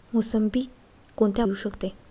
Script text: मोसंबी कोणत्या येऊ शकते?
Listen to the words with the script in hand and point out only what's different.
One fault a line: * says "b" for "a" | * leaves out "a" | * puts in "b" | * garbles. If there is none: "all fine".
all fine